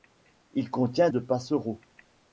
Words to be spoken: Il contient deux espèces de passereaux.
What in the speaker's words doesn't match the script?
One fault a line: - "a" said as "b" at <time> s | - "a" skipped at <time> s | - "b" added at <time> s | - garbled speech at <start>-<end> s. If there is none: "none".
- "deux espèces" skipped at 1.1 s